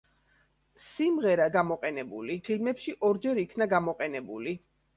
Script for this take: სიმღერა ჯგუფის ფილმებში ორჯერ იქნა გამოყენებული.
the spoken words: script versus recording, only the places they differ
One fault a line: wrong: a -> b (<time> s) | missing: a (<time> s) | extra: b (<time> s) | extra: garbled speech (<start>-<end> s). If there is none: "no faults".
wrong: ჯგუფის -> გამოყენებული (1.6 s)